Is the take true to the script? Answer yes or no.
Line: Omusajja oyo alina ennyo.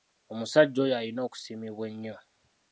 no